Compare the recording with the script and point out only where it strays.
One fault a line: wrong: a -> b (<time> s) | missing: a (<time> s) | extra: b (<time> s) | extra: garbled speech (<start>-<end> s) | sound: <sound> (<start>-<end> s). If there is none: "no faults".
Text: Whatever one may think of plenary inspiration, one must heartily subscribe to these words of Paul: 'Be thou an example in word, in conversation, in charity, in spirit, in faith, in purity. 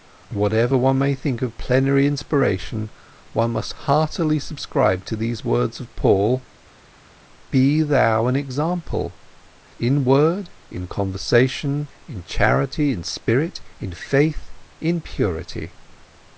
no faults